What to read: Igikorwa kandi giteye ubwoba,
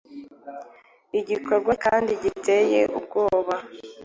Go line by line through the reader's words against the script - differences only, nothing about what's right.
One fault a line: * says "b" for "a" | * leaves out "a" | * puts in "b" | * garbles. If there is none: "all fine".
all fine